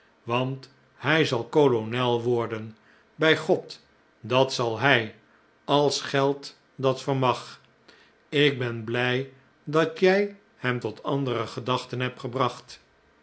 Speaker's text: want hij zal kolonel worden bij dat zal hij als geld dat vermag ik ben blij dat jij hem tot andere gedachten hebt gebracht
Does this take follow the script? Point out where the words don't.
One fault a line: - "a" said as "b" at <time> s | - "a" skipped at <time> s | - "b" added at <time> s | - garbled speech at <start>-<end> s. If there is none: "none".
- "god" added at 3.4 s